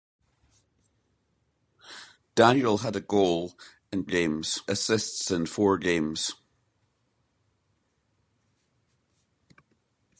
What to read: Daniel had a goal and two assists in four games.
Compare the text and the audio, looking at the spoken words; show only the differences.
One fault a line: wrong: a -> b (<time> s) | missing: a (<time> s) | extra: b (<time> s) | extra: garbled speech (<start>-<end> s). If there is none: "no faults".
wrong: two -> games (4.0 s)